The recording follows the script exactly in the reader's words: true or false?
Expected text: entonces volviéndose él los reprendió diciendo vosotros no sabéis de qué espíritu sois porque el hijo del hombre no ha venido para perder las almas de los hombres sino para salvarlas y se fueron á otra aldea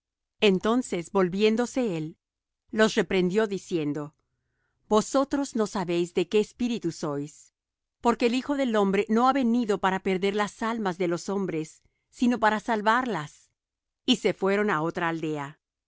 true